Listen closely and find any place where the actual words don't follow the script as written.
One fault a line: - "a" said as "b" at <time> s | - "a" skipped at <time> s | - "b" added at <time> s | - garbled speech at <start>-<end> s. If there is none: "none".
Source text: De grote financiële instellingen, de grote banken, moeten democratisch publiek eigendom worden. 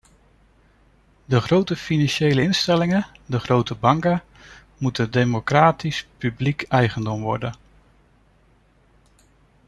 none